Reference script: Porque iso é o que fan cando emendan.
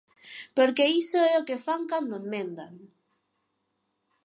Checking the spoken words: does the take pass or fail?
pass